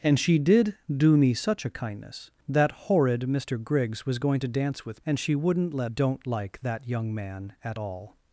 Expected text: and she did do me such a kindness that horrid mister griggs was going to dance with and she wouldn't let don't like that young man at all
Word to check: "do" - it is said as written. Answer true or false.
true